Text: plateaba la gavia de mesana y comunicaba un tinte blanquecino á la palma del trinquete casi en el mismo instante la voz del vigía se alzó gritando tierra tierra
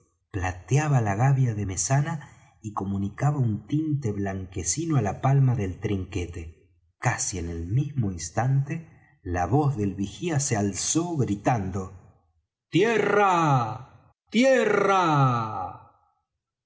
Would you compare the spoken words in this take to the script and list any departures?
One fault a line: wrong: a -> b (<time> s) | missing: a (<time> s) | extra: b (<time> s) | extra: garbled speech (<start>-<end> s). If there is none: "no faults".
no faults